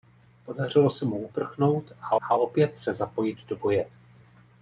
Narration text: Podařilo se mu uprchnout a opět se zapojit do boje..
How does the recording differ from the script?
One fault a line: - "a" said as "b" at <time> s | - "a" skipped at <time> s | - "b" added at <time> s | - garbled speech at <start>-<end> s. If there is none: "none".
- "a" added at 2.2 s